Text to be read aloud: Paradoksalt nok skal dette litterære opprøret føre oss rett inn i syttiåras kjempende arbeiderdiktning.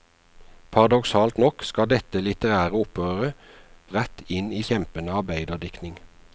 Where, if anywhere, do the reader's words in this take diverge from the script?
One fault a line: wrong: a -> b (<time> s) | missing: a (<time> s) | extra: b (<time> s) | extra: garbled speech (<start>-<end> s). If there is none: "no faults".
missing: føre oss (3.3 s)
missing: syttiåras (4.6 s)